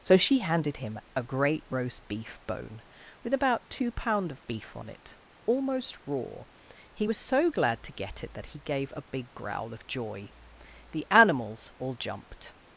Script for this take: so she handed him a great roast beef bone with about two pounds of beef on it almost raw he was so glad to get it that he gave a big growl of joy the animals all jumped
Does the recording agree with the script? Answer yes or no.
no